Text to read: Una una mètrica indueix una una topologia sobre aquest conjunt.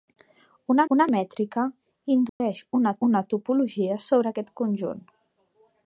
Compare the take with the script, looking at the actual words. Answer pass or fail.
pass